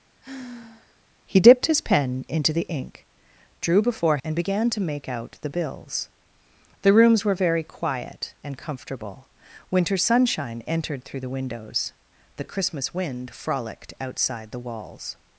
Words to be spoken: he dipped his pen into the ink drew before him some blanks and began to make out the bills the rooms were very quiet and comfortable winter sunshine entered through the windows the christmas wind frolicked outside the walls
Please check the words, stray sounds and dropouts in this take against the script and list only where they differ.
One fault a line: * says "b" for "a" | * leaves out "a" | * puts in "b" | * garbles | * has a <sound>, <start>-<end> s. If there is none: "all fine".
* has a sigh, 0.2-1.0 s
* leaves out "him some blanks"